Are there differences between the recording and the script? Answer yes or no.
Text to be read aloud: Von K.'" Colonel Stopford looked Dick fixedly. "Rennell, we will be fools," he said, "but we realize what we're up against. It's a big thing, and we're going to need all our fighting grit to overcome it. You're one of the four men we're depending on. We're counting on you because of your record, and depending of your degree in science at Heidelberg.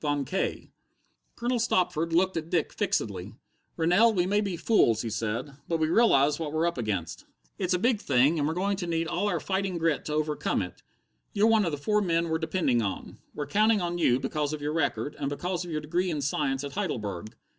yes